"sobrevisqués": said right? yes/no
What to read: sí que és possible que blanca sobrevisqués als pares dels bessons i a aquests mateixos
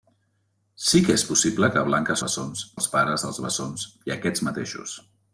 no